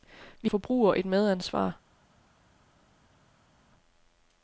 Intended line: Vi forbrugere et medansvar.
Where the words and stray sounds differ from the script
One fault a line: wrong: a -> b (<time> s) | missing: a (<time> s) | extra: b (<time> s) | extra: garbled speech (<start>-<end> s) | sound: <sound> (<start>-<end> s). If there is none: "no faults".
no faults